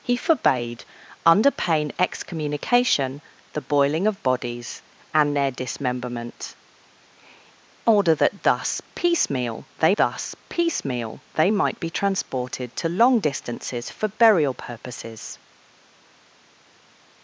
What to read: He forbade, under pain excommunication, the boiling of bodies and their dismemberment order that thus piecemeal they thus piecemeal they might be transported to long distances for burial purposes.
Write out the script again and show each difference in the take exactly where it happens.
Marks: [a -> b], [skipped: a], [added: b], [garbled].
He forbade, under pain excommunication, the boiling of bodies and their dismemberment order that thus piecemeal they thus piecemeal they might be transported to long distances for burial purposes.